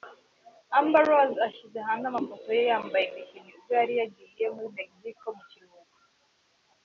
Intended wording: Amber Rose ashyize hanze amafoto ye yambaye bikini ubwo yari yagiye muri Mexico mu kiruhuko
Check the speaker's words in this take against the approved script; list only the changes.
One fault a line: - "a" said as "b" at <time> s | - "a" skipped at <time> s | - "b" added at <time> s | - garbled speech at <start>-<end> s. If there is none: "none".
none